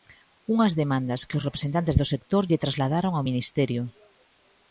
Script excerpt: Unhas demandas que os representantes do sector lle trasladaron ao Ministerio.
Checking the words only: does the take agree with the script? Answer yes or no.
yes